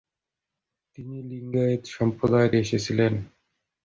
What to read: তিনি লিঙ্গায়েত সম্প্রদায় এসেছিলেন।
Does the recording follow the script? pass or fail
pass